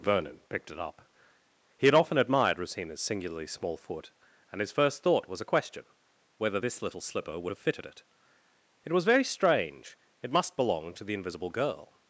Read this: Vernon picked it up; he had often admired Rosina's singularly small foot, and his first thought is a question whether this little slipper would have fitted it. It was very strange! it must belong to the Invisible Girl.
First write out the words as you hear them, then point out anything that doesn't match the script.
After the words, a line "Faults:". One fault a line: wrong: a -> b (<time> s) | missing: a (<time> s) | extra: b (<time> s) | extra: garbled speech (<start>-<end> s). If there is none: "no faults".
Vernon picked it up; he had often admired Rosina's singularly small foot, and his first thought was a question whether this little slipper would have fitted it. It was very strange! it must belong to the Invisible Girl.
Faults:
wrong: is -> was (5.3 s)